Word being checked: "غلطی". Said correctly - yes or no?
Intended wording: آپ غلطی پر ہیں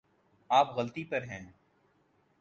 yes